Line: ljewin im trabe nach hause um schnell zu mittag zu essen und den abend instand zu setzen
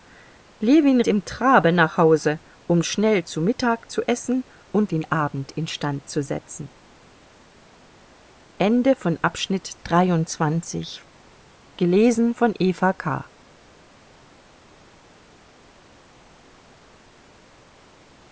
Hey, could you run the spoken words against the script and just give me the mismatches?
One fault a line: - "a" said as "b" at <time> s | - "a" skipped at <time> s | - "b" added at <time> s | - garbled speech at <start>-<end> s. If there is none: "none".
none